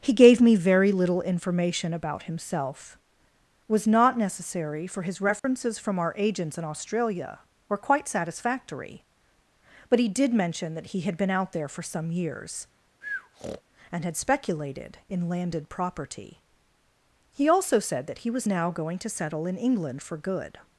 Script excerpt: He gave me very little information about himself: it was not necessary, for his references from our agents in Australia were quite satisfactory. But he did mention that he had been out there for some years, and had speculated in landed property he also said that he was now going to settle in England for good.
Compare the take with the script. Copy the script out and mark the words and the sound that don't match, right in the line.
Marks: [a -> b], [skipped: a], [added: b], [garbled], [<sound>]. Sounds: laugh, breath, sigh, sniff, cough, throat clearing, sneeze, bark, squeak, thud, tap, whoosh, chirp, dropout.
He gave me very little information about himself: [skipped: it] was not necessary, for his references [dropout] from our agents in Australia were quite satisfactory. But he did mention that he had been out there for some years, [breath] and had speculated in landed property he also said that he was now going to settle in England for good.